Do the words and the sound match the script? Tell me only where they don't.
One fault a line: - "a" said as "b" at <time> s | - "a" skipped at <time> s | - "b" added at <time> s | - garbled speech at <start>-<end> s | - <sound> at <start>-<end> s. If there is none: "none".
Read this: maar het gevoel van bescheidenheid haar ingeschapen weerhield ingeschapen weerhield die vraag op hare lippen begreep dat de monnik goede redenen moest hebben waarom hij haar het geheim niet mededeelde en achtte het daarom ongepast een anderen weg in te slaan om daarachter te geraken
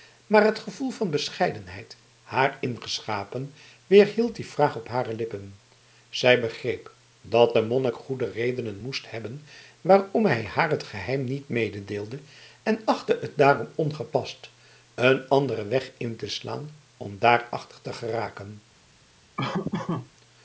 - "ingeschapen weerhield" skipped at 4.3 s
- "zij" added at 6.1 s
- laugh at 19.4-20.1 s